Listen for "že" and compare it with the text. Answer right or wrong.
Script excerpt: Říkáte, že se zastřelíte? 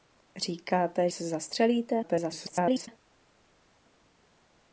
wrong